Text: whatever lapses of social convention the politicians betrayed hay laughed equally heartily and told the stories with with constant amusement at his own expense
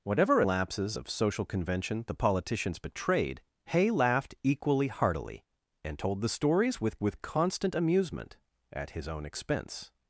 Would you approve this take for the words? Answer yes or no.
yes